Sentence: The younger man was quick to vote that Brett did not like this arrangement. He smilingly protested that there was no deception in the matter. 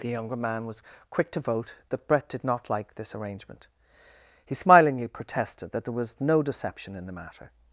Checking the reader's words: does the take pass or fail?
pass